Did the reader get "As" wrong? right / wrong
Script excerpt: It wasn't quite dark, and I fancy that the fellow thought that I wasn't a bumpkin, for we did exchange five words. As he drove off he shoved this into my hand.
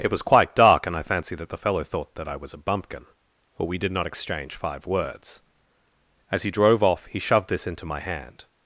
right